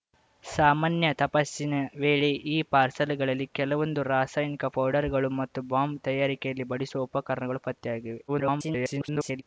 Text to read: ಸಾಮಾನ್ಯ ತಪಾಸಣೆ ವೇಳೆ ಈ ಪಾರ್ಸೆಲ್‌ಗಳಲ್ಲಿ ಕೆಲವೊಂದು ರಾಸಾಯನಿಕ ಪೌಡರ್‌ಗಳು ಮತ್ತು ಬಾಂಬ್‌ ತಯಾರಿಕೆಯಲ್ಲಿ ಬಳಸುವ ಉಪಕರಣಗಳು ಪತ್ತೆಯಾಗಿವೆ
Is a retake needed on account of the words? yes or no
yes